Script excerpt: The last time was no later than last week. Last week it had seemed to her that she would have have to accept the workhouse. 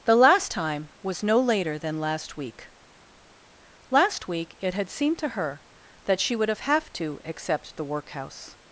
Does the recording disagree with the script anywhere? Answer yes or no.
no